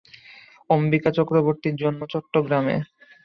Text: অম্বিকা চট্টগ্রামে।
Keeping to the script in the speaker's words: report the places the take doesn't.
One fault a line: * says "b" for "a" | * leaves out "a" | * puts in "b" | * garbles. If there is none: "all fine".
* puts in "চক্রবর্তীর জন্ম"